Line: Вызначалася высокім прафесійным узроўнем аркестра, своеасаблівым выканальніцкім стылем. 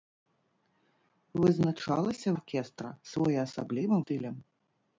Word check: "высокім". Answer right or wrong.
wrong